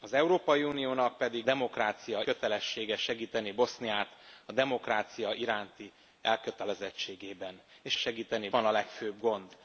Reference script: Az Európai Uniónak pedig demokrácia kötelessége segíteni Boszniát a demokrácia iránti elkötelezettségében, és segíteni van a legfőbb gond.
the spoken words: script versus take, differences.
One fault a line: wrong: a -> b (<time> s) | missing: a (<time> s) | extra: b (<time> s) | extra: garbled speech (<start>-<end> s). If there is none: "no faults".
no faults